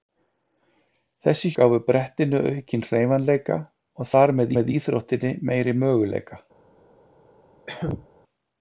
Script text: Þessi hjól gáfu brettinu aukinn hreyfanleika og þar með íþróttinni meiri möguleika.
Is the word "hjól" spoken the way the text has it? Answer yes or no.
no